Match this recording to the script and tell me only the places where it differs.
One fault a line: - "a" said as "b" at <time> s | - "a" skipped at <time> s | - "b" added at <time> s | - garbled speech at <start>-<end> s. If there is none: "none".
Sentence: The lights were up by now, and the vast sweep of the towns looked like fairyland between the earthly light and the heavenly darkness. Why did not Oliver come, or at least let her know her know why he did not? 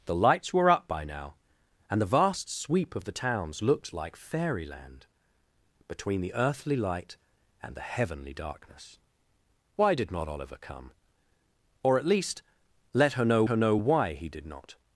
none